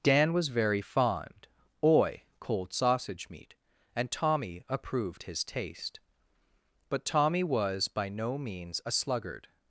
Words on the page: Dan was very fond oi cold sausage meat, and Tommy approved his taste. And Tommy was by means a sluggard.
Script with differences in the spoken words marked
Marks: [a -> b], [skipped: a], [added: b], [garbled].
Dan was very fond oi cold sausage meat, and Tommy approved his taste. [And -> But] Tommy was by [added: no] means a sluggard.